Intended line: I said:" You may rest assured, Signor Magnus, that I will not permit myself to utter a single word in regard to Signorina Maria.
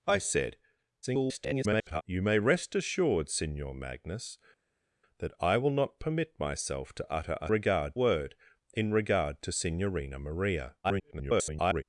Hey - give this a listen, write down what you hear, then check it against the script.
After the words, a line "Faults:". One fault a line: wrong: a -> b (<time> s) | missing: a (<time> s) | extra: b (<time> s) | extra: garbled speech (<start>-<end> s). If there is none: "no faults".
I said:" [garbled] You may rest assured, Signor Magnus, that I will not permit myself to utter a regard word in regard to Signorina Maria. [garbled]
Faults:
extra: garbled speech (1.0-2.0 s)
wrong: single -> regard (7.5 s)
extra: garbled speech (10.8-11.8 s)